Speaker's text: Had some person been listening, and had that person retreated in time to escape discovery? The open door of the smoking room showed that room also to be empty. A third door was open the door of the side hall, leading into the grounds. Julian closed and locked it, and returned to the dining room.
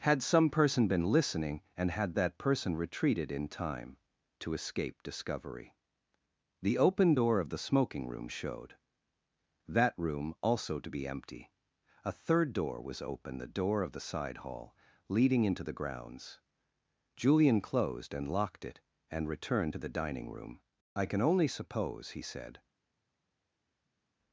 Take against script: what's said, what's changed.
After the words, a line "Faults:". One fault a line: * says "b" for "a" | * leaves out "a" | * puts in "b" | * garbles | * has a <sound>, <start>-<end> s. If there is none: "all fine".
Had some person been listening, and had that person retreated in time to escape discovery? The open door of the smoking room showed that room also to be empty. A third door was open the door of the side hall, leading into the grounds. Julian closed and locked it, and returned to the dining room. "I can only suppose," he said
Faults:
* puts in "I can only suppose he said"